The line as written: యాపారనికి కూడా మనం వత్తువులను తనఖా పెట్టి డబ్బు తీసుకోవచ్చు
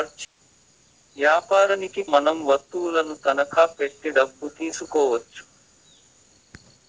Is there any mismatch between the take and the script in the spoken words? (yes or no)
yes